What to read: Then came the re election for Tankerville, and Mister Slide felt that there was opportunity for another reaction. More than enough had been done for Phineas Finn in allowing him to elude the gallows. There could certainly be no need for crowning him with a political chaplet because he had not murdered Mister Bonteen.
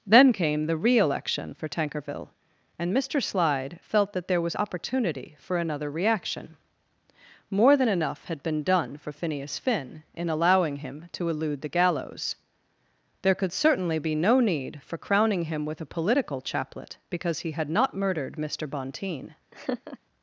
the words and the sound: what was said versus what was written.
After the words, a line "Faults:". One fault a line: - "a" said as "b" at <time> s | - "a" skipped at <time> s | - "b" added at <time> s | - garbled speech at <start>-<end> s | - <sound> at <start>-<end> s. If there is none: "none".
Then came the re election for Tankerville, and Mister Slide felt that there was opportunity for another reaction. More than enough had been done for Phineas Finn in allowing him to elude the gallows. There could certainly be no need for crowning him with a political chaplet because he had not murdered Mister Bonteen.
Faults:
- laugh at 19.5-20.0 s